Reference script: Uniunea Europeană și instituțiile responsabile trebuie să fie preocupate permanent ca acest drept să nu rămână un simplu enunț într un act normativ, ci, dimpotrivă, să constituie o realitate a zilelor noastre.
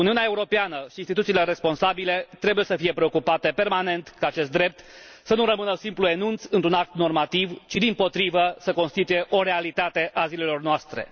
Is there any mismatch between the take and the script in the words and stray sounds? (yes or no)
no